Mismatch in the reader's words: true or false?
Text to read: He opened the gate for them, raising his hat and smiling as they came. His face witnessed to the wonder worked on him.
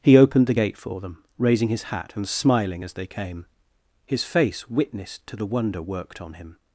false